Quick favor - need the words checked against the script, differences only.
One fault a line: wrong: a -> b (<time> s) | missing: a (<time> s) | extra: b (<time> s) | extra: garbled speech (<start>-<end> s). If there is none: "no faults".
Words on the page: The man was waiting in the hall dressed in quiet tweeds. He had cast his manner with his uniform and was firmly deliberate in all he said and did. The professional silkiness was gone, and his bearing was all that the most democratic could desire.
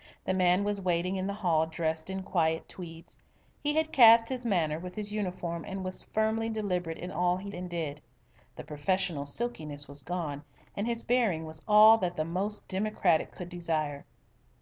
missing: said (7.5 s)